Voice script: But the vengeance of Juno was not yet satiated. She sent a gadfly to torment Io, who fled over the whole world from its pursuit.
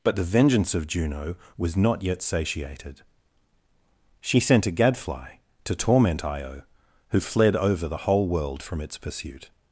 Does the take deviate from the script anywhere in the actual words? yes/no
no